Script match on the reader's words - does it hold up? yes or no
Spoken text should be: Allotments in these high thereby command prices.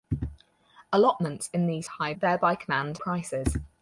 yes